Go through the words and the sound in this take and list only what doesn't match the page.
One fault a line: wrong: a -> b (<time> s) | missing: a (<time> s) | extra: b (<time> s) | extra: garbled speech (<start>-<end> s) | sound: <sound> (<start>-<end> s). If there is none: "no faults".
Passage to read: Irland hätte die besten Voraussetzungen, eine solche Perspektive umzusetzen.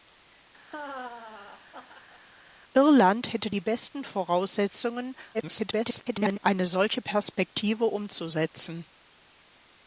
sound: laugh (0.7-2.2 s)
extra: garbled speech (5.3-6.4 s)